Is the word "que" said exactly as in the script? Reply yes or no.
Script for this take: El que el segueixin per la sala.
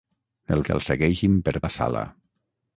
yes